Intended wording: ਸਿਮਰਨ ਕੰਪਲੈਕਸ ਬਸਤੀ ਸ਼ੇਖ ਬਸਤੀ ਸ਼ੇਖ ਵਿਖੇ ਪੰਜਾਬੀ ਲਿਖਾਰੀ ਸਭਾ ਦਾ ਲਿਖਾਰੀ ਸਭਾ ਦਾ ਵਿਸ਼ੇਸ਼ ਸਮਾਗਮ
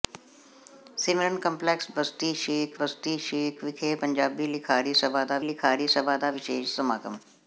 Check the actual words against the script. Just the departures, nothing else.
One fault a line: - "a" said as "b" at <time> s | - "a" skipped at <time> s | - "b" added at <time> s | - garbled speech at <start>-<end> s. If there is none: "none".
none